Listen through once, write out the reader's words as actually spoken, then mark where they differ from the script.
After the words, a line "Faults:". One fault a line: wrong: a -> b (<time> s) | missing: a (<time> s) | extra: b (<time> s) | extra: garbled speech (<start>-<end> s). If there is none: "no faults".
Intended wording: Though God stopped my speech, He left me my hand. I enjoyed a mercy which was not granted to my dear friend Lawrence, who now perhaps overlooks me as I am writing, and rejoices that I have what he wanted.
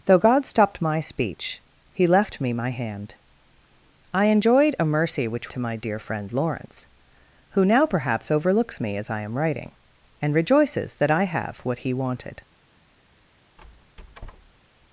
Though God stopped my speech, He left me my hand. I enjoyed a mercy which to my dear friend Lawrence, who now perhaps overlooks me as I am writing, and rejoices that I have what he wanted.
Faults:
missing: was not granted (5.5 s)